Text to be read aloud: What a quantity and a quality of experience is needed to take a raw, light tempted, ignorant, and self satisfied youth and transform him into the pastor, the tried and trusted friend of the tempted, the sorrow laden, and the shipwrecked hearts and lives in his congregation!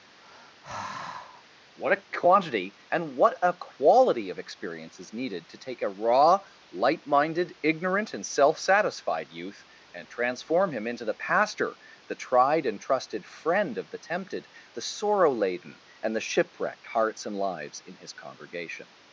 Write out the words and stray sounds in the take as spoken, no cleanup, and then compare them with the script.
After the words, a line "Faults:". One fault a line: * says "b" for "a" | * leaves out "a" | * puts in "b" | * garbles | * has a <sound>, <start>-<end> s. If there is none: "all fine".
What a quantity and what a quality of experience is needed to take a raw, light minded, ignorant, and self satisfied youth and transform him into the pastor, the tried and trusted friend of the tempted, the sorrow laden, and the shipwrecked hearts and lives in his congregation!
Faults:
* has a sigh, 0.2-1.4 s
* puts in "what"
* says "minded" for "tempted"